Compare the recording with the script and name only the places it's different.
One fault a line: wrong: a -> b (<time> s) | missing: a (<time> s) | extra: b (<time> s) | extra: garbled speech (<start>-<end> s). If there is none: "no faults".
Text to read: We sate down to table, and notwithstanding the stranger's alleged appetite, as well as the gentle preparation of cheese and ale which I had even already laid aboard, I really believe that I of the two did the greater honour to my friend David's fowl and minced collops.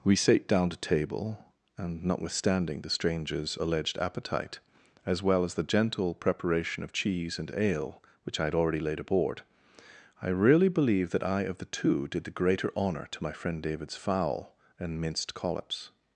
missing: even (8.5 s)